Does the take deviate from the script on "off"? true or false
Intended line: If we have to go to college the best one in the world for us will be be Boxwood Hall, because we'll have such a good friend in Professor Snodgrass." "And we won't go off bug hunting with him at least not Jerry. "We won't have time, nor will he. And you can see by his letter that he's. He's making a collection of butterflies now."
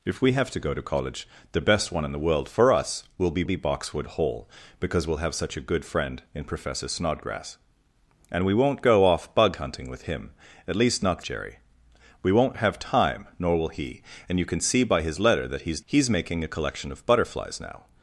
false